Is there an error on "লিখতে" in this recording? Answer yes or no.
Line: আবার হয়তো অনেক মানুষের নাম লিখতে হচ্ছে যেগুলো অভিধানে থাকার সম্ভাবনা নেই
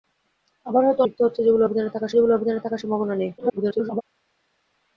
yes